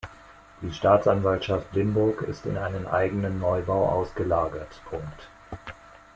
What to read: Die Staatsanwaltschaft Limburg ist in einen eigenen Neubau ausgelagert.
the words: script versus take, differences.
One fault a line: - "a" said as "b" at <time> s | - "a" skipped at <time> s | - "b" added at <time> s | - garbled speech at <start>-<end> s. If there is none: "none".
none